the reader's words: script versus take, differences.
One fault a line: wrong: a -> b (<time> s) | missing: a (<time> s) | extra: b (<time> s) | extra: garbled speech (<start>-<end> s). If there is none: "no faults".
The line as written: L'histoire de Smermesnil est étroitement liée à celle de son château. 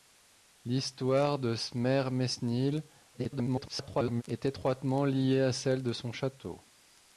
extra: garbled speech (3.1-4.2 s)